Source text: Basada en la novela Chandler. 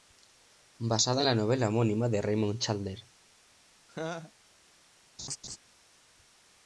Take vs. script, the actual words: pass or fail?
fail